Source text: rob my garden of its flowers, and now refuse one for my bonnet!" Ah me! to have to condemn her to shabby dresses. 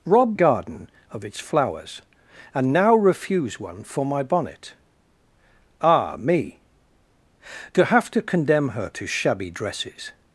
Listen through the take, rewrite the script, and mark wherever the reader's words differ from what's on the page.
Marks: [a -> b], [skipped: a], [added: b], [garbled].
rob [skipped: my] garden of its flowers, and now refuse one for my bonnet!" Ah me! to have to condemn her to shabby dresses.